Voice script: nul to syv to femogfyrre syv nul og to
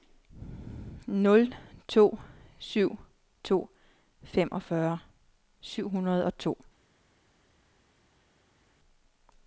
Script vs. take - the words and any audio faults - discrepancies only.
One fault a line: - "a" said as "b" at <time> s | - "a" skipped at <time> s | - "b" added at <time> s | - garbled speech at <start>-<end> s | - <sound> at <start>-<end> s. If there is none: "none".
- "nul" said as "hundrede" at 5.9 s